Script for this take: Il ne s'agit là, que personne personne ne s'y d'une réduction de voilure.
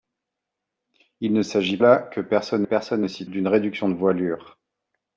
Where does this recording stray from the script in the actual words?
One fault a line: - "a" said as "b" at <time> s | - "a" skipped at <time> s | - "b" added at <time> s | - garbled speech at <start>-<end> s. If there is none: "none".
none